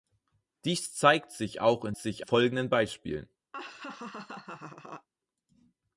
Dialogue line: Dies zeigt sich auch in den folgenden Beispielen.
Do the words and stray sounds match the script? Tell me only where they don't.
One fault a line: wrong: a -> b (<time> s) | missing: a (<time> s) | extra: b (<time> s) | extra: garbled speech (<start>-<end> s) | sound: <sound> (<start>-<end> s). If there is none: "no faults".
wrong: den -> sich (2.0 s)
sound: laugh (3.5-5.1 s)